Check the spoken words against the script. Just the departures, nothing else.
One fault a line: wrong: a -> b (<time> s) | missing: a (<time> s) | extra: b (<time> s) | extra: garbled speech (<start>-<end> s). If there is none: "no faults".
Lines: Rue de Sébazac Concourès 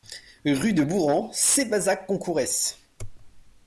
extra: Bourran (0.8 s)